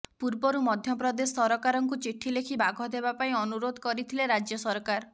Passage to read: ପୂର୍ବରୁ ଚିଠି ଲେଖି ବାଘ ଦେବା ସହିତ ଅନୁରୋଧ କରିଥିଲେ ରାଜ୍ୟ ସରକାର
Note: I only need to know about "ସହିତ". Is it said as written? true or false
false